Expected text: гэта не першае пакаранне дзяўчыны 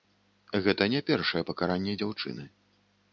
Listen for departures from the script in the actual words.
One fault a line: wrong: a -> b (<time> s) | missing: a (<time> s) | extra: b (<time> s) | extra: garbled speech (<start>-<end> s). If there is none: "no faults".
no faults